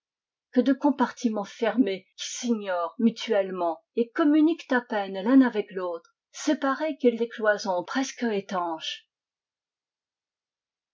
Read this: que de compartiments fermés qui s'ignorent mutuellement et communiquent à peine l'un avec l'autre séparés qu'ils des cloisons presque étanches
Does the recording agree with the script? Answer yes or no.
yes